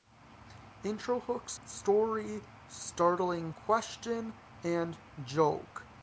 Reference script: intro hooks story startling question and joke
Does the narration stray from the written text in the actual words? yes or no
no